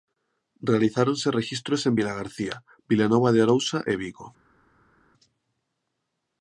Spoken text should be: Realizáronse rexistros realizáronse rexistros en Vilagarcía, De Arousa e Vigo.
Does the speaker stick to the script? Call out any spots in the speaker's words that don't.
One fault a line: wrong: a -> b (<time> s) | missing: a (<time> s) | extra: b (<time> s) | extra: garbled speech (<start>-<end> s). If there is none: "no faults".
missing: realizáronse rexistros (1.9 s)
extra: Vilanova (2.9 s)